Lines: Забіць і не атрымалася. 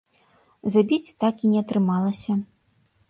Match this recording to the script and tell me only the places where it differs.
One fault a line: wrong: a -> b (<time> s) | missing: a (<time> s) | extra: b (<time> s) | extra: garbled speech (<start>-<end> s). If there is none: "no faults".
extra: так (1.2 s)